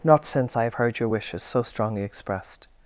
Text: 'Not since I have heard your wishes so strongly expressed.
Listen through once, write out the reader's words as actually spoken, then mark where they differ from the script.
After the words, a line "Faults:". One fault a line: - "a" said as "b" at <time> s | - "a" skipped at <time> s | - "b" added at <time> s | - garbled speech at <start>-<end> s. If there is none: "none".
'Not since I have heard your wishes so strongly expressed.
Faults:
none